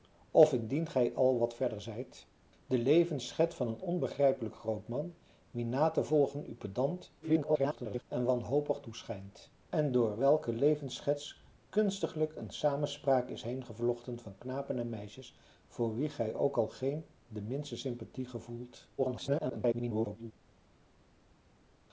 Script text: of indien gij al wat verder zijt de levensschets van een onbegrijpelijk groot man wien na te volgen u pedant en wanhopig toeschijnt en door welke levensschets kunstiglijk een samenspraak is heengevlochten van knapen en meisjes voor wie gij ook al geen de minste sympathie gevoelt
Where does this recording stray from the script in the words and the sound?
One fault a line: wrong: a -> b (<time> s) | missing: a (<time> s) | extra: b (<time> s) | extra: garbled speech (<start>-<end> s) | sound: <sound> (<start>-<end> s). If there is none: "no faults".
extra: garbled speech (7.2-8.0 s)
extra: garbled speech (19.0-20.3 s)